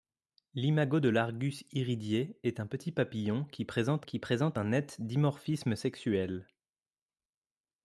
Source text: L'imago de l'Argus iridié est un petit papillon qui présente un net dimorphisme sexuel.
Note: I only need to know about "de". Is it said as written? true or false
true